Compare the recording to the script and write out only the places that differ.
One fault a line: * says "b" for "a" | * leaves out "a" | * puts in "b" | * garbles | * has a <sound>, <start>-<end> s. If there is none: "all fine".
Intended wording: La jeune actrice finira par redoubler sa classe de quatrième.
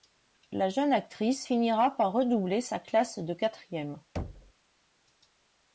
* has a thud, 4.2-4.5 s